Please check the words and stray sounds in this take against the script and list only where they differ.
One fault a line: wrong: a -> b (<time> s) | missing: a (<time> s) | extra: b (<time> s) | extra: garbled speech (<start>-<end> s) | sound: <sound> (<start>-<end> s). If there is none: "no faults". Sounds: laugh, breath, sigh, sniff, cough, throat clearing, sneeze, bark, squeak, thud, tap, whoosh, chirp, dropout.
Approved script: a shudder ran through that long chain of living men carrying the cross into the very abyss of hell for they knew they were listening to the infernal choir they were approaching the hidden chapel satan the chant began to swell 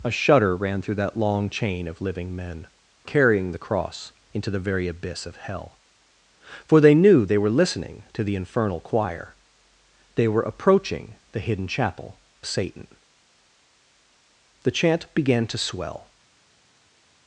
no faults